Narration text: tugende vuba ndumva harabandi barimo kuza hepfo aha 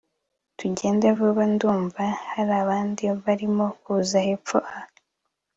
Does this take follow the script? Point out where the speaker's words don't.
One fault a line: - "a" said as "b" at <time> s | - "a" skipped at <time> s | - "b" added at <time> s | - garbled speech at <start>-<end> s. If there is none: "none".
none